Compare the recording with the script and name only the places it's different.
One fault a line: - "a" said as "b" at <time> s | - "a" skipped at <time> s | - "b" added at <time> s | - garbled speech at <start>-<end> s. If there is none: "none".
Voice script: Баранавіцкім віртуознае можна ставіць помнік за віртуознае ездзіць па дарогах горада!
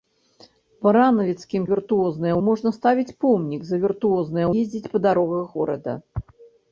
none